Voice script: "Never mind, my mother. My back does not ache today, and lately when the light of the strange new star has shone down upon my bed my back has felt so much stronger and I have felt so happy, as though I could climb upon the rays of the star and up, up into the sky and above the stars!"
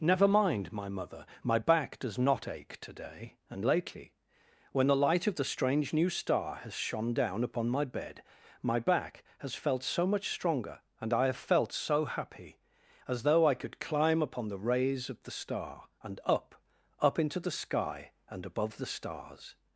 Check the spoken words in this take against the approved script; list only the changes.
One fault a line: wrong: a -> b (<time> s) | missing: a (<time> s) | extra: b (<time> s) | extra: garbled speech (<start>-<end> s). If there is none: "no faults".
no faults